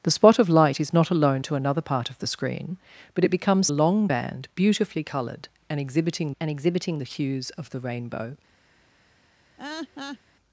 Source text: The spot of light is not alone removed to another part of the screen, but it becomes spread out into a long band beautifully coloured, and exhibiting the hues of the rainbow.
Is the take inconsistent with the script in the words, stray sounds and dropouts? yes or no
yes